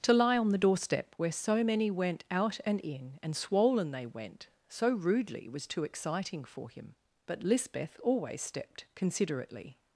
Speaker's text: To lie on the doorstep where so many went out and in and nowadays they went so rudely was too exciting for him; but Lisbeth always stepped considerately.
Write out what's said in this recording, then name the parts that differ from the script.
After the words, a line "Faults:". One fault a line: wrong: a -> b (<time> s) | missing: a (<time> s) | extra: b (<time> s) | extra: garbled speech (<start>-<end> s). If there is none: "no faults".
To lie on the doorstep where so many went out and in and swollen they went so rudely was too exciting for him; but Lisbeth always stepped considerately.
Faults:
wrong: nowadays -> swollen (3.4 s)